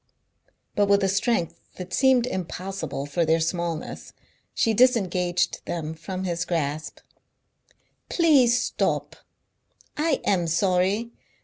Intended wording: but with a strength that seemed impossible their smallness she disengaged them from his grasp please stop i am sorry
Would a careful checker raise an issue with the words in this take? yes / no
yes